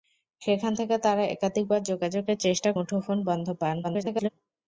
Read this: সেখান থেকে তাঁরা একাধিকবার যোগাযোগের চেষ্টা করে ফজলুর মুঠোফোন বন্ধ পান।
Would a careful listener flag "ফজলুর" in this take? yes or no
yes